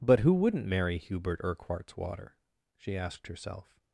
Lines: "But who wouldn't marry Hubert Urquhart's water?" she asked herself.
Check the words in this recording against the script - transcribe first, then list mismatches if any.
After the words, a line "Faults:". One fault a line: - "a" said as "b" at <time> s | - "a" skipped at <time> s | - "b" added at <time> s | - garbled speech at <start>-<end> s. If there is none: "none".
"But who wouldn't marry Hubert Urquhart's water?" she asked herself.
Faults:
none